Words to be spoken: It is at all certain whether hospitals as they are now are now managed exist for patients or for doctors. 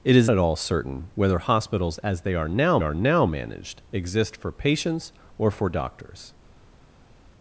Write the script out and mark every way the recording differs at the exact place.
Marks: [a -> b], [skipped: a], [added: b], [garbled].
It is at all certain whether hospitals as they are now are now managed exist for patients or for doctors.